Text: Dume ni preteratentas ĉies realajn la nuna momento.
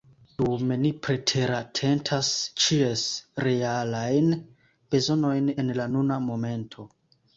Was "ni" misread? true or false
false